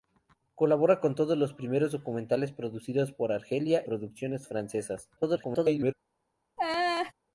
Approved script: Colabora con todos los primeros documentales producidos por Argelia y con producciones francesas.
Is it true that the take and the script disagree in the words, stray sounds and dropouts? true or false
true